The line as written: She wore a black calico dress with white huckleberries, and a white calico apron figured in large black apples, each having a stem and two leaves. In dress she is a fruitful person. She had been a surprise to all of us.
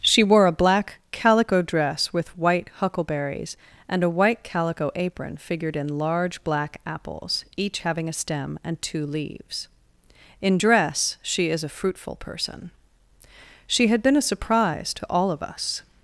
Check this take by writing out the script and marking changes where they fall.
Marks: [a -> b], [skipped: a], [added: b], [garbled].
She wore a black calico dress with white huckleberries, and a white calico apron figured in large black apples, each having a stem and two leaves. In dress she is a fruitful person. She had been a surprise to all of us.